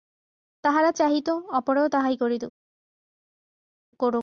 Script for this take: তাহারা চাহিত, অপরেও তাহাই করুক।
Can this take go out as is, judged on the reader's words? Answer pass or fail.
pass